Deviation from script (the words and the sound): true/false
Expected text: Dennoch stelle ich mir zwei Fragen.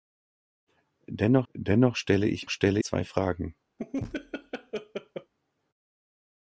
true